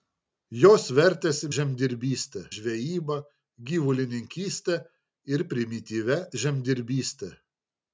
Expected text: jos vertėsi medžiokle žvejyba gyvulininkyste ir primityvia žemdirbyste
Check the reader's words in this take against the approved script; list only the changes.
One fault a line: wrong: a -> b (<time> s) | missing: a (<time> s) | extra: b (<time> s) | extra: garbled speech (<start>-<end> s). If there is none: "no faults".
wrong: medžiokle -> žemdirbyste (1.6 s)